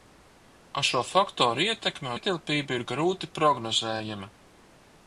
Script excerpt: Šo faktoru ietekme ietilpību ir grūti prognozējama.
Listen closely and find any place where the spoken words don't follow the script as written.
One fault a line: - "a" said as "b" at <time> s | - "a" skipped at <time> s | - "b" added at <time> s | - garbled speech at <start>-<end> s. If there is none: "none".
none